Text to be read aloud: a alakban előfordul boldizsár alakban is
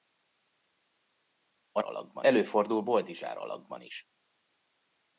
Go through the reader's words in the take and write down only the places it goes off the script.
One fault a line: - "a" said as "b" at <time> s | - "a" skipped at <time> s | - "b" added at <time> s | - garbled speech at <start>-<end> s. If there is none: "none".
none